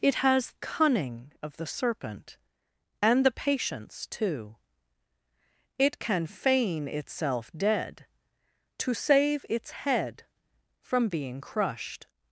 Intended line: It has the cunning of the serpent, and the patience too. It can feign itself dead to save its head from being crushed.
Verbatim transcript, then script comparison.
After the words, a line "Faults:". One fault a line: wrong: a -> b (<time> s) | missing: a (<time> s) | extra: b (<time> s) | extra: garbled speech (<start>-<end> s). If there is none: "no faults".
It has cunning of the serpent, and the patience too. It can feign itself dead to save its head from being crushed.
Faults:
missing: the (0.5 s)